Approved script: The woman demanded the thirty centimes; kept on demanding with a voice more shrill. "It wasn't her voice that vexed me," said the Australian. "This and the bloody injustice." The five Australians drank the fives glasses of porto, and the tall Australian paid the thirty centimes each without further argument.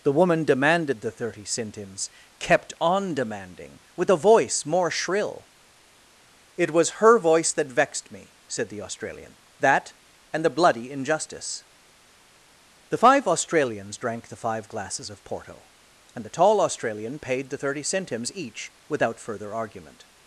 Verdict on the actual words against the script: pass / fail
fail